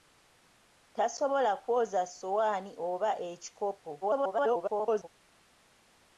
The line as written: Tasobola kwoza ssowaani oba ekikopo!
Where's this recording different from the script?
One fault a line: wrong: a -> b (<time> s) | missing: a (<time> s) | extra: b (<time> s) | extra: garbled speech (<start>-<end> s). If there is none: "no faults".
extra: garbled speech (4.0-5.1 s)